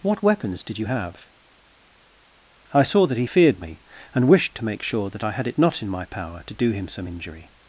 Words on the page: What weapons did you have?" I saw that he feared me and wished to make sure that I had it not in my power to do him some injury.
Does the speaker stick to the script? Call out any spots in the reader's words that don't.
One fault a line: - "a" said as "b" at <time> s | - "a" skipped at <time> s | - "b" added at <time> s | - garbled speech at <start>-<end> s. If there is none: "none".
none